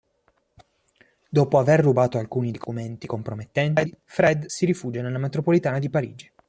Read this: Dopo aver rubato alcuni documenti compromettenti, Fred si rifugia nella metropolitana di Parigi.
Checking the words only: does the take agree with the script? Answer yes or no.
yes